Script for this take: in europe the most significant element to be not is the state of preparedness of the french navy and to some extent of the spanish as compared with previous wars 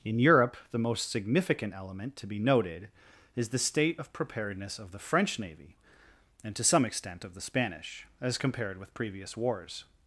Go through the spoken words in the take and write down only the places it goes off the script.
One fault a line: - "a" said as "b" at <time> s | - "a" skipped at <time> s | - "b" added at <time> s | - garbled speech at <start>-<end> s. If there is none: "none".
- "not" said as "noted" at 2.4 s